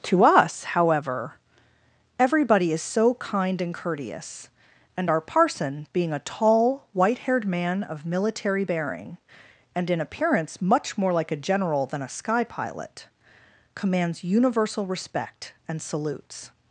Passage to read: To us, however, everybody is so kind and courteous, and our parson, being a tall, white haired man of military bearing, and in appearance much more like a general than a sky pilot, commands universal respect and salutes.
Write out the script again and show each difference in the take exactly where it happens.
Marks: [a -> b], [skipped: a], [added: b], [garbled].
To us, however, everybody is so kind and courteous, and our parson, being a tall, white haired man of military bearing, and in appearance much more like a general than a sky pilot, commands universal respect and salutes.